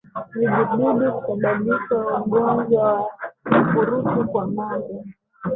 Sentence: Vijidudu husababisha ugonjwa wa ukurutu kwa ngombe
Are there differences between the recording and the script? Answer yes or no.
no